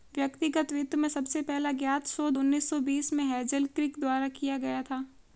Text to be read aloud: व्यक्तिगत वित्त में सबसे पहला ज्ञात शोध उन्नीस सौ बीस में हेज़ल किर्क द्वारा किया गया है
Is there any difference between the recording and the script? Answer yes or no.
yes